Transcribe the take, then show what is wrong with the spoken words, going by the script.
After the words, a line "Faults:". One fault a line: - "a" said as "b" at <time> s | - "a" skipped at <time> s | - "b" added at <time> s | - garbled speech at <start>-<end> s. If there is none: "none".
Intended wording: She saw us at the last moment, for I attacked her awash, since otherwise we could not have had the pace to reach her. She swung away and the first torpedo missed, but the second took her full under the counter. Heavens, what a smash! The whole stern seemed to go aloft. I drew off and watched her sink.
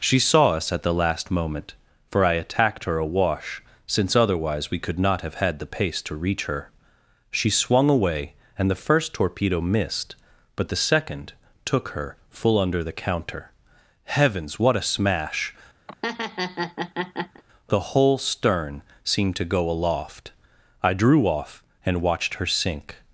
She saw us at the last moment, for I attacked her awash, since otherwise we could not have had the pace to reach her. She swung away and the first torpedo missed, but the second took her full under the counter. Heavens, what a smash! The whole stern seemed to go aloft. I drew off and watched her sink.
Faults:
none